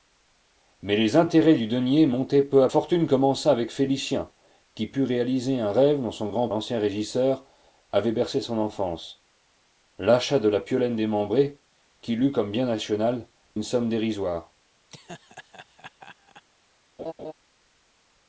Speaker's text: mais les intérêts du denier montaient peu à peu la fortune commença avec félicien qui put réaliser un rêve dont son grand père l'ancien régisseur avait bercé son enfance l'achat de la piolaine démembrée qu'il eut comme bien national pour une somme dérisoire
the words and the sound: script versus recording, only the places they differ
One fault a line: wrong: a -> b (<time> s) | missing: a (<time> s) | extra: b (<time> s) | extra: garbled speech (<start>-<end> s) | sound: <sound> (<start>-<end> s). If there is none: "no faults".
missing: peu la (2.7 s)
missing: père (6.5 s)
missing: pour (13.3 s)
sound: laugh (14.9-16.4 s)
sound: laugh (17.0-17.3 s)